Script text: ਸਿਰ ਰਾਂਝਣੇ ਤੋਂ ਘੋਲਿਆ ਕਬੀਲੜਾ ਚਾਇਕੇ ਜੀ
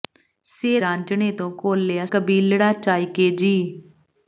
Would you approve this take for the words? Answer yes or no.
yes